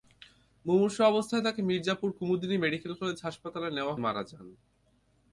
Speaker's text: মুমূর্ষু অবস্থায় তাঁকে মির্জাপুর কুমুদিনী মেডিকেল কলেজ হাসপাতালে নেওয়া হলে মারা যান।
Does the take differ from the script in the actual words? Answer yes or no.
yes